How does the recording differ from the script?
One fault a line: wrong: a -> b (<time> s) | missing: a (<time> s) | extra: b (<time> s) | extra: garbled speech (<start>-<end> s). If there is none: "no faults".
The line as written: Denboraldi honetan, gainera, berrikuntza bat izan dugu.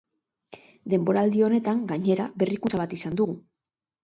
no faults